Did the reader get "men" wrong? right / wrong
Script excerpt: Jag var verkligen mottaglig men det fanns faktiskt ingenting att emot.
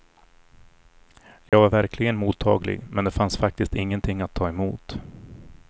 right